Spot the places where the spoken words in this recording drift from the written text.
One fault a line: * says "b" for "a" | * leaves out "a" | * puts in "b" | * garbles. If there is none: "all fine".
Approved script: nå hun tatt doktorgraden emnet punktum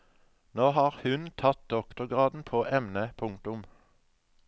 * puts in "har"
* puts in "på"